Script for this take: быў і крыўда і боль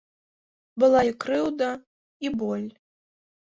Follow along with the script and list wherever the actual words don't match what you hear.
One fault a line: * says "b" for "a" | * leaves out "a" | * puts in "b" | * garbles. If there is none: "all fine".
* says "была" for "быў"